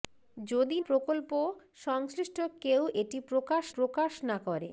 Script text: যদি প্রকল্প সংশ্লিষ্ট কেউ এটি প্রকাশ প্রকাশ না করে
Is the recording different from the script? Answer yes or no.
no